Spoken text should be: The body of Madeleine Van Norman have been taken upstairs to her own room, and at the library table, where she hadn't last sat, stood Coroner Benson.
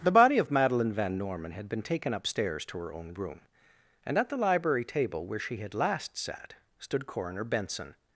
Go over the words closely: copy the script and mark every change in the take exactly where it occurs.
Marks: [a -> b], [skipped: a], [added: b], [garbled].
The body of Madeleine Van Norman [have -> had] been taken upstairs to her own room, and at the library table, where she [hadn't -> had] last sat, stood Coroner Benson.